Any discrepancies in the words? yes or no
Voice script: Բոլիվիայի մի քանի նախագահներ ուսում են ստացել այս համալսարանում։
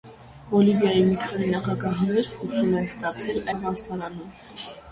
yes